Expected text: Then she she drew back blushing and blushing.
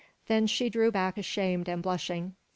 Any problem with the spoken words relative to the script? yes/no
yes